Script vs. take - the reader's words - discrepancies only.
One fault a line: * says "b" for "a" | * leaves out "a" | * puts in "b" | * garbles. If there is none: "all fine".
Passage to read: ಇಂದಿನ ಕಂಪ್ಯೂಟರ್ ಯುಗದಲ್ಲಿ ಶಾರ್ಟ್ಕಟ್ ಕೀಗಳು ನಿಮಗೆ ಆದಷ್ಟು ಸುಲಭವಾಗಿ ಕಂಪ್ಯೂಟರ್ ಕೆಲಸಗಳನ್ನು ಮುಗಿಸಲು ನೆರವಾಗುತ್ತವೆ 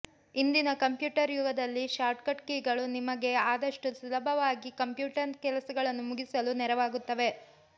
all fine